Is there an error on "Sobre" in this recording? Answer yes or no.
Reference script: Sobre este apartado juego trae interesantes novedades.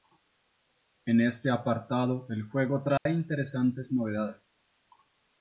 yes